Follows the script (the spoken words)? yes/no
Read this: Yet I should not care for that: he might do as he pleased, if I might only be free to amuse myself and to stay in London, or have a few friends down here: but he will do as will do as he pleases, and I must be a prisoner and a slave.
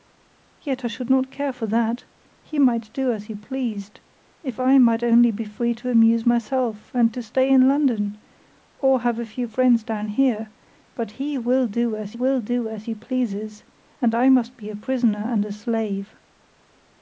yes